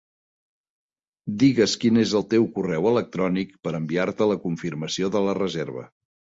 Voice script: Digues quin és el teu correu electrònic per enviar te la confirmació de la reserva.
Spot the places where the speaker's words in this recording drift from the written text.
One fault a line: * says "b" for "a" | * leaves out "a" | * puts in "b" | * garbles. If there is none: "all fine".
all fine